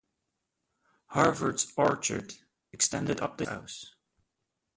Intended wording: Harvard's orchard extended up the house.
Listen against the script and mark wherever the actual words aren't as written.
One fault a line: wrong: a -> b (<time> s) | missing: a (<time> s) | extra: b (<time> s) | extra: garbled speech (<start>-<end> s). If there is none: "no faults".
no faults